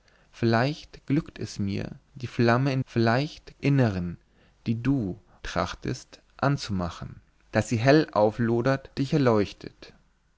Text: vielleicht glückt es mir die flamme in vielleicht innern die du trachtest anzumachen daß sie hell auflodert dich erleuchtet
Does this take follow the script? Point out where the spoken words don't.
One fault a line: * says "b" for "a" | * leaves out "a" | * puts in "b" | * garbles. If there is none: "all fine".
all fine